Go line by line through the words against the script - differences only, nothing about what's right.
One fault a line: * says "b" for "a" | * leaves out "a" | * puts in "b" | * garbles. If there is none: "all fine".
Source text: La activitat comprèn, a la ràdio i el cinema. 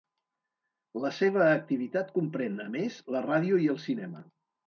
* puts in "seva"
* puts in "més"